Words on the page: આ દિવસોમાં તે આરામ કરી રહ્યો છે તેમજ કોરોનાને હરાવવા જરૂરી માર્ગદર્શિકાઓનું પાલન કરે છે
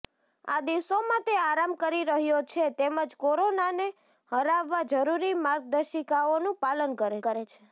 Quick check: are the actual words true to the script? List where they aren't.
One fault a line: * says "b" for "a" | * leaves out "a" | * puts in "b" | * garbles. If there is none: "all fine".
* puts in "કરે"